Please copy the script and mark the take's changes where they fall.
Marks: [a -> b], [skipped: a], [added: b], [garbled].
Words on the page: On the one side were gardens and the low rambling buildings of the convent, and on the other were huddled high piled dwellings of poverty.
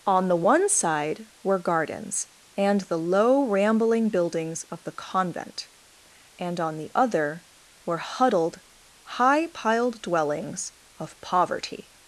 On the one side were gardens and the low rambling buildings of the convent, and on the other were huddled high piled dwellings of poverty.